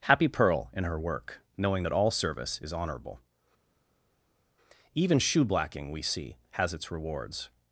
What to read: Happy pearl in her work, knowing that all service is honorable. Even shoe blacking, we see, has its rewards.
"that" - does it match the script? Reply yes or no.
yes